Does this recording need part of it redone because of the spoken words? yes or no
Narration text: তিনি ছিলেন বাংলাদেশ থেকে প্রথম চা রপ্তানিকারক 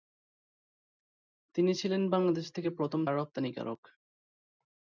yes